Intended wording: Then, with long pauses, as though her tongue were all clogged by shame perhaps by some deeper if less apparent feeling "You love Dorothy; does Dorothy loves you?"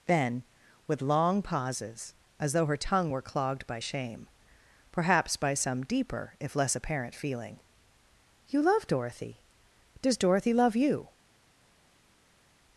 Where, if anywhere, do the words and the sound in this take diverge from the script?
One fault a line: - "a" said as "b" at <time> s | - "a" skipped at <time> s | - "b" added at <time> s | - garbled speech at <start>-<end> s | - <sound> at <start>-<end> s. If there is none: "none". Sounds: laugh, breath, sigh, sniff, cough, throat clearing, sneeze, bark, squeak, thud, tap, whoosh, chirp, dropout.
- "all" skipped at 3.2 s
- "loves" said as "love" at 10.5 s